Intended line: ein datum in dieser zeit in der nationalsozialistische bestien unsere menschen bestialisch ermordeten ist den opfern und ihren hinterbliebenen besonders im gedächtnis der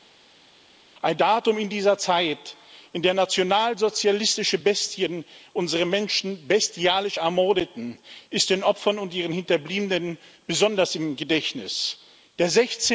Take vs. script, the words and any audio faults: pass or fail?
pass